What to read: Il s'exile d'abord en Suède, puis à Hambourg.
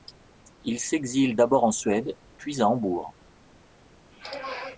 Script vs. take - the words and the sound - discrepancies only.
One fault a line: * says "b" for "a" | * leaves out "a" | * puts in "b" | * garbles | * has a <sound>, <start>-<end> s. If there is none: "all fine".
all fine